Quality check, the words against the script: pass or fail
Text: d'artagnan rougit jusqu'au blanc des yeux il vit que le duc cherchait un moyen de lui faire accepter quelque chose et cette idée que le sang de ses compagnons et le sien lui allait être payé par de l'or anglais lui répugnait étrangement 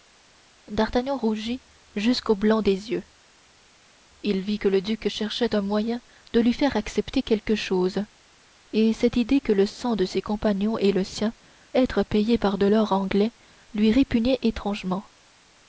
fail